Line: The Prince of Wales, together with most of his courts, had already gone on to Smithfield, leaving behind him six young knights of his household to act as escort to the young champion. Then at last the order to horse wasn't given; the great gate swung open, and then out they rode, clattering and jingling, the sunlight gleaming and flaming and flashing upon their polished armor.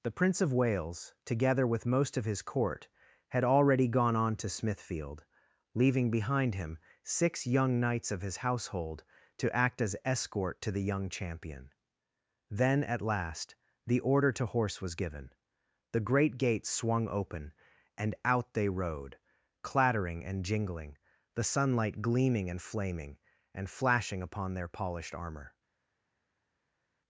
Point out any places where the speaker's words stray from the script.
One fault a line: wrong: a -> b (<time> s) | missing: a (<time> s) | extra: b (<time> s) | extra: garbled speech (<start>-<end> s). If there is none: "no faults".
wrong: courts -> court (2.4 s)
wrong: wasn't -> was (14.8 s)
missing: then (18.1 s)